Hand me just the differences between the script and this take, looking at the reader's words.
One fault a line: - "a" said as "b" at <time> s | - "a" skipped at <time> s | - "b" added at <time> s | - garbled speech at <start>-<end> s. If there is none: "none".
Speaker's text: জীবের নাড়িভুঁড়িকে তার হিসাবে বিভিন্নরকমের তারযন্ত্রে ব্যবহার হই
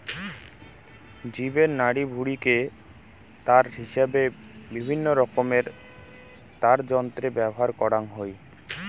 - "করাং" added at 7.8 s